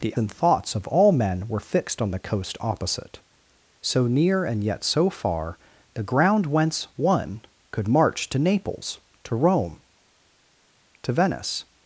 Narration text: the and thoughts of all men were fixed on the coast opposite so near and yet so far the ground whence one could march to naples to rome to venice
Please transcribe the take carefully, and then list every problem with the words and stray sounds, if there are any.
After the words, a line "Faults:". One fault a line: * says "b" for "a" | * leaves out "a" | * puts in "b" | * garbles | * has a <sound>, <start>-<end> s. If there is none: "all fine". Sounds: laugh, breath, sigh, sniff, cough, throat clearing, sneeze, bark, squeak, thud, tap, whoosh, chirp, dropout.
the and thoughts of all men were fixed on the coast opposite so near and yet so far the ground whence one could march to naples to rome to venice
Faults:
all fine